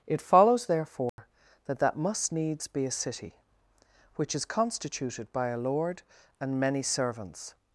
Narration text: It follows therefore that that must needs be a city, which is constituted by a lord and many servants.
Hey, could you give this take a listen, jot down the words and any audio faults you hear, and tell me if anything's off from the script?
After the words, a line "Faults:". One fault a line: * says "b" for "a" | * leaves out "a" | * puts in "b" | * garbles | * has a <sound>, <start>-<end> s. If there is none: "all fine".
It follows therefore that that must needs be a city, which is constituted by a lord and many servants.
Faults:
* has a dropout, 1.1-1.2 s